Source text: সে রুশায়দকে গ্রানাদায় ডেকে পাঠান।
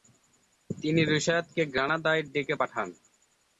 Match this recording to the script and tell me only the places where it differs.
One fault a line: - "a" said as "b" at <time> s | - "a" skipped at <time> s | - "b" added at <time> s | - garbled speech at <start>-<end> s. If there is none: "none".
- "সে" said as "তিনি" at 0.7 s